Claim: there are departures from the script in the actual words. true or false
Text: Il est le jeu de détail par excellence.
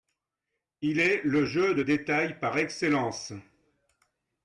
false